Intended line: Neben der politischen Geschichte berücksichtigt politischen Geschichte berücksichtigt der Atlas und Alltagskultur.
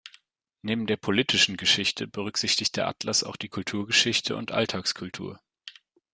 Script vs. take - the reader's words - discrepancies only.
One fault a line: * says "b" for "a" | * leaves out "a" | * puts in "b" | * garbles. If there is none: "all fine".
* says "der Atlas auch die Kulturgeschichte" for "politischen Geschichte berücksichtigt der Atlas"